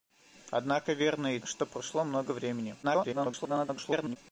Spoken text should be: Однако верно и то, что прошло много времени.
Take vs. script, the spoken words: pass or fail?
fail